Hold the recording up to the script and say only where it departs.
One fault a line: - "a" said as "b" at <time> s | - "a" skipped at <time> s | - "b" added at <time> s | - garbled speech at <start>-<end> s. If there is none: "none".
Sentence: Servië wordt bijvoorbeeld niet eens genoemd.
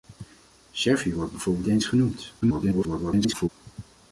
- "niet" skipped at 1.7 s
- garbled speech at 2.4-3.5 s